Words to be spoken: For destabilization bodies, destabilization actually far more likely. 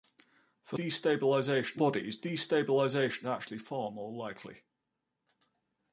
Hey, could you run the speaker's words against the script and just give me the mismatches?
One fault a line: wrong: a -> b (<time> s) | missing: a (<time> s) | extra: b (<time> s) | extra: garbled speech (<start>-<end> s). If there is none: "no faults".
no faults